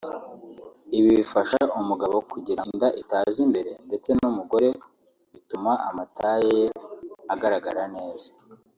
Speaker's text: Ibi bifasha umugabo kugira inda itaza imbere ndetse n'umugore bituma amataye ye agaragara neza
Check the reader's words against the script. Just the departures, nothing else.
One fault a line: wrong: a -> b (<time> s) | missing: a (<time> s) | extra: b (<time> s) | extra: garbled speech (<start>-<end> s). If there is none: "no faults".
no faults